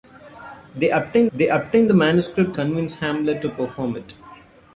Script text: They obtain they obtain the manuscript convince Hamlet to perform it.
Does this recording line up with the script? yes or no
yes